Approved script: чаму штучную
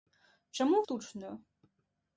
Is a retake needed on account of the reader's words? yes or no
no